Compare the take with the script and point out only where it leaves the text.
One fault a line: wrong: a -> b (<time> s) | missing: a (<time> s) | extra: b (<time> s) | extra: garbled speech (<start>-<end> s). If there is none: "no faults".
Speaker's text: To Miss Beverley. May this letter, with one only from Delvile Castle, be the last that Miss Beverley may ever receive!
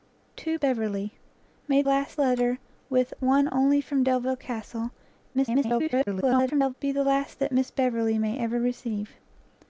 missing: Miss (0.6 s)
wrong: this -> last (1.9 s)
extra: garbled speech (5.3-6.7 s)